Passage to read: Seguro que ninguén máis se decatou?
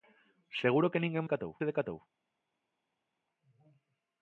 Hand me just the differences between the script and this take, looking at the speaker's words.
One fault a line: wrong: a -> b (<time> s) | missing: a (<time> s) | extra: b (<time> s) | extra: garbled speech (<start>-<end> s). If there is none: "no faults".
wrong: máis -> decatou (1.2 s)